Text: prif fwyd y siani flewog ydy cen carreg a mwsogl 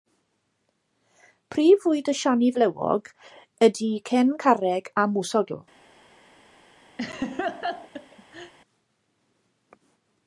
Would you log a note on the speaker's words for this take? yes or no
no